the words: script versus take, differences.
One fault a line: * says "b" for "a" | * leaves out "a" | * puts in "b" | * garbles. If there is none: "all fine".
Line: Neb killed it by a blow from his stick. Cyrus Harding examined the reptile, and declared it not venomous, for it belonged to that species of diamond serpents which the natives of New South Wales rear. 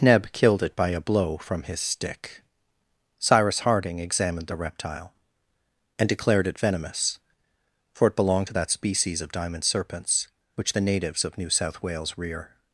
* leaves out "not"